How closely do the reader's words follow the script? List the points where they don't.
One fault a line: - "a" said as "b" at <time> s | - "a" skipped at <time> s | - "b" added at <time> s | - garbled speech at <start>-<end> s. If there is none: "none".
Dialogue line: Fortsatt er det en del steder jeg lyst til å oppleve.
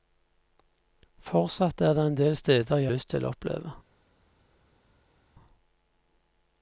none